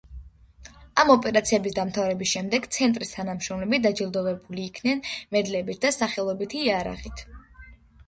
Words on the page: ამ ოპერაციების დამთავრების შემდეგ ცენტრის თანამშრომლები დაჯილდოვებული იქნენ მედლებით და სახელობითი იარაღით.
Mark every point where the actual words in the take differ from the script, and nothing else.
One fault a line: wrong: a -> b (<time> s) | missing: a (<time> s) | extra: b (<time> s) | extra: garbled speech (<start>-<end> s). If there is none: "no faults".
no faults